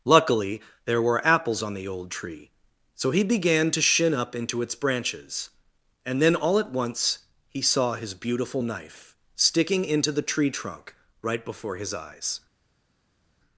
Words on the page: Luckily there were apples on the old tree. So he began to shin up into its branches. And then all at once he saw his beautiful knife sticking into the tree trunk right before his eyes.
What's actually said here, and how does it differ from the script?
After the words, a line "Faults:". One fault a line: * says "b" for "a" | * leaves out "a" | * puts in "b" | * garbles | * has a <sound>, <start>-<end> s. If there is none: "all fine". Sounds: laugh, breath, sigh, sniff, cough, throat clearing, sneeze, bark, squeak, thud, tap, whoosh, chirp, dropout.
Luckily there were apples on the old tree. So he began to shin up into its branches. And then all at once he saw his beautiful knife sticking into the tree trunk right before his eyes.
Faults:
all fine